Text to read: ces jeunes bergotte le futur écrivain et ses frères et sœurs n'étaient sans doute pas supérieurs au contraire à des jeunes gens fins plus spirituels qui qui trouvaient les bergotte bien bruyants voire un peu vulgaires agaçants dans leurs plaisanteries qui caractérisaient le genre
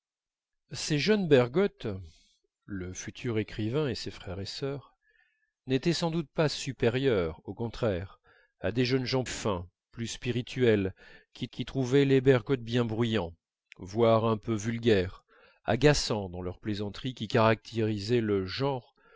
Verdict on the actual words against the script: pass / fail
pass